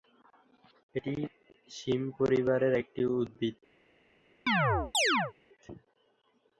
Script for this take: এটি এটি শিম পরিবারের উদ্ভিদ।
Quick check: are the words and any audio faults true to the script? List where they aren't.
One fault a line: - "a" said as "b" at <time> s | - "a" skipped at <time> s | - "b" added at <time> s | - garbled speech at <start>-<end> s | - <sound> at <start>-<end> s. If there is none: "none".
- "এটি" skipped at 1.1 s
- "একটি" added at 2.8 s
- chirp at 4.5-5.3 s